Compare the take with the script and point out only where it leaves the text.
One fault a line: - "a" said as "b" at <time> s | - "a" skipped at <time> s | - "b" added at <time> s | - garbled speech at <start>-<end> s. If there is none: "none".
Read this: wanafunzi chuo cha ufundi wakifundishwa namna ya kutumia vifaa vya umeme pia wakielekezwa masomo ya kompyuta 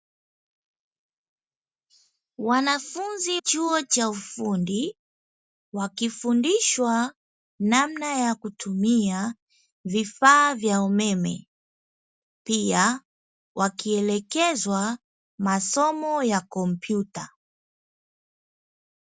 none